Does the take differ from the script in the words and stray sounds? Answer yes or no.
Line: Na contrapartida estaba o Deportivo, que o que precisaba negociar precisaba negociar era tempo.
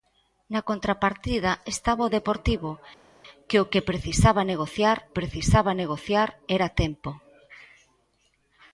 no